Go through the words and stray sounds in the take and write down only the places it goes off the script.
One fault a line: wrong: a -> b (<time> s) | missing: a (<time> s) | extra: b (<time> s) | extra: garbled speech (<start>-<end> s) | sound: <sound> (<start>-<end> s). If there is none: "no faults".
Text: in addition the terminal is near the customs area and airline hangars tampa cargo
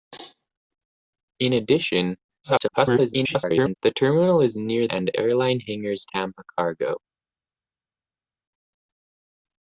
extra: garbled speech (2.4-3.7 s)
missing: the customs area (4.9 s)